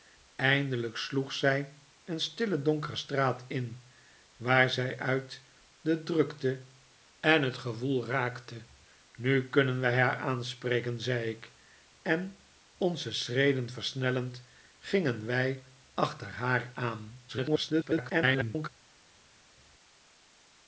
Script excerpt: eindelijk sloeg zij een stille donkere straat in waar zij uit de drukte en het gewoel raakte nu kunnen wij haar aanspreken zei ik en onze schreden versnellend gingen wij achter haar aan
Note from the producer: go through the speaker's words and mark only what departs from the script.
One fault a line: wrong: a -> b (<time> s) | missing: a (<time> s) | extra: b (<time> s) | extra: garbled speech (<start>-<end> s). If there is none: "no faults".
extra: garbled speech (17.3-18.7 s)